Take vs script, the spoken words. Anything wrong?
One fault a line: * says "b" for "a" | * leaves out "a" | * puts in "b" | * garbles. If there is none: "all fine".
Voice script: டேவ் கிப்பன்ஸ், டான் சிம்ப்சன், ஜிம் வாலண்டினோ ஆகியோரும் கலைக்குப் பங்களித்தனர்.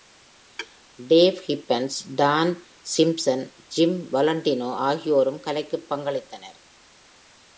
all fine